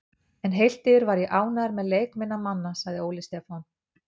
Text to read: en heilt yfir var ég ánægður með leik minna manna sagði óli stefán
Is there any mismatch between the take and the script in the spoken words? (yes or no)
no